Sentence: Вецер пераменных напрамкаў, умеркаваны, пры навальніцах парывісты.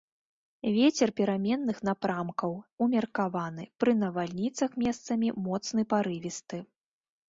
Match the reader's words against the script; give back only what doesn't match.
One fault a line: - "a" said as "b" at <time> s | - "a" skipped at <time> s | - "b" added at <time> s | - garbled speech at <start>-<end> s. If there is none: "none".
- "месцамі моцны" added at 4.9 s